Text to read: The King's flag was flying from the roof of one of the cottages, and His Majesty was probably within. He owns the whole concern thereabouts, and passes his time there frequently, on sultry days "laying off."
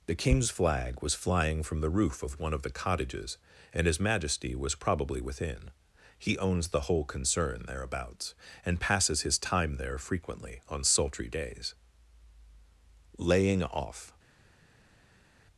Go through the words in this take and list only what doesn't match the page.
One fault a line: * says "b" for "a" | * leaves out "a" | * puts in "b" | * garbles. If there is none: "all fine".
all fine